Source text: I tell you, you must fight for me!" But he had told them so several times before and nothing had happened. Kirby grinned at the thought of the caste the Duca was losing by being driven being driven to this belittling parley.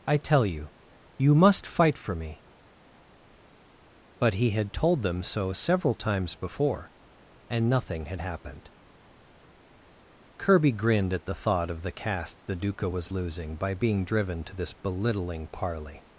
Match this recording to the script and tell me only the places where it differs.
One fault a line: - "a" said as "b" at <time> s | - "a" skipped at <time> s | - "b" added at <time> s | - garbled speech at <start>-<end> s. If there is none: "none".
- "being driven" skipped at 14.4 s